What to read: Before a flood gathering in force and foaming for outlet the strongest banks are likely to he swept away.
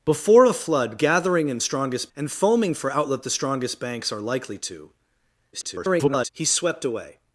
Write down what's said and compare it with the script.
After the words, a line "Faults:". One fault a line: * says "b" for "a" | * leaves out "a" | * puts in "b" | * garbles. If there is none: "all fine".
Before a flood gathering in strongest and foaming for outlet the strongest banks are likely to [garbled] he swept away.
Faults:
* says "strongest" for "force"
* garbles